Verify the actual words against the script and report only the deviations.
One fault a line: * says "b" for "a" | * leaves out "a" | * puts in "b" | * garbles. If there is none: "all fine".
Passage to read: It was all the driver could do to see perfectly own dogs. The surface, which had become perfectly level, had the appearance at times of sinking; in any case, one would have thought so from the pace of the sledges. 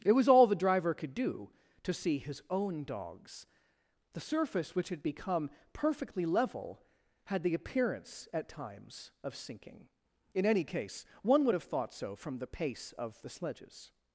* says "his" for "perfectly"